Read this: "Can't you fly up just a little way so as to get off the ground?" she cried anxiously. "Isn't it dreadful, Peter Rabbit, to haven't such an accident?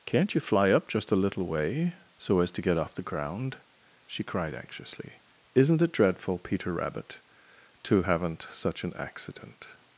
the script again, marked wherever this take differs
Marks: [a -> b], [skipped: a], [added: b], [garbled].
"Can't you fly up just a little way so as to get off the ground?" she cried anxiously. "Isn't it dreadful, Peter Rabbit, to haven't such an accident?